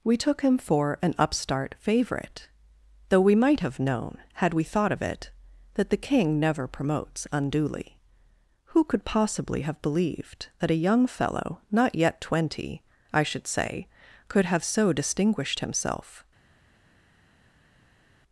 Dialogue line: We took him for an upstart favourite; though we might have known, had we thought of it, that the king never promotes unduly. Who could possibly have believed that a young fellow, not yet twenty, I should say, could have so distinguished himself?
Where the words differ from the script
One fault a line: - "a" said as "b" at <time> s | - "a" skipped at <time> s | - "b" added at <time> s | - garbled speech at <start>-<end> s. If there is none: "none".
none